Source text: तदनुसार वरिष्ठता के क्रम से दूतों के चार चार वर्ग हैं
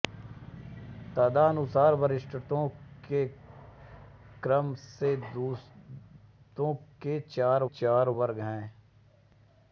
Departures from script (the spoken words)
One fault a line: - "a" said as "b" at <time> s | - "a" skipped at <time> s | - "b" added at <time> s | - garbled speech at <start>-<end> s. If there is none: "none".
none